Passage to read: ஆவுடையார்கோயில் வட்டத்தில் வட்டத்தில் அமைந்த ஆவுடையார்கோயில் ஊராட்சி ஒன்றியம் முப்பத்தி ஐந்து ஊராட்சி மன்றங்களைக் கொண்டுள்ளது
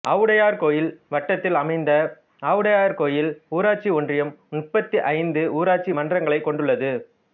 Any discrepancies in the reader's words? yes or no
yes